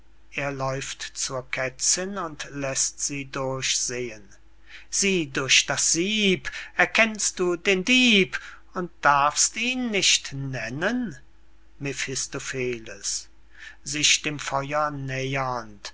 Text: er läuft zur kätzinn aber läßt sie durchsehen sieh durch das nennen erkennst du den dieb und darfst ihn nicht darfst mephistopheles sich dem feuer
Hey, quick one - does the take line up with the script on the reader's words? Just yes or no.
no